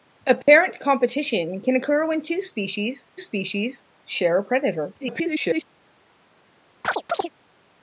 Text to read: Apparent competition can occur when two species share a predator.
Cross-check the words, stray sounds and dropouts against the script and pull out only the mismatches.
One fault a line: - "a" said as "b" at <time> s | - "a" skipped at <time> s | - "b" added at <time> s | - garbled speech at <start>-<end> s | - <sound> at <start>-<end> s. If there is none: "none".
- dropout at 0.4-0.5 s
- "species" added at 3.2 s
- garbled speech at 5.0-5.6 s
- chirp at 6.8-7.3 s